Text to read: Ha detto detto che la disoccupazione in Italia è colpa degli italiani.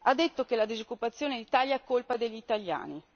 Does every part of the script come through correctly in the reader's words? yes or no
no